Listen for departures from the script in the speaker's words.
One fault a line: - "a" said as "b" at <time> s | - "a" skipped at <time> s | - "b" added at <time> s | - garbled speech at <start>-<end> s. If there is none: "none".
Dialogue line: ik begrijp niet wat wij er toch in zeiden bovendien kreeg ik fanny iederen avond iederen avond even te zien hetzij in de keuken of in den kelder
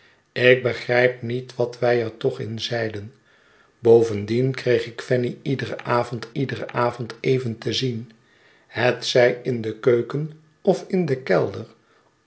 none